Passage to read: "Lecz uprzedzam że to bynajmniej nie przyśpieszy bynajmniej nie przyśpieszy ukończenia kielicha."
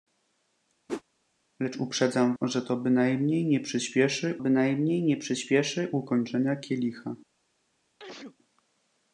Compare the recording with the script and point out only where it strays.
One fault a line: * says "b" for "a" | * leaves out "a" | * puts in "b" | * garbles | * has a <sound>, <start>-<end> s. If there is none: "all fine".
* has a whoosh, 0.9-1.0 s
* has a sneeze, 8.0-8.4 s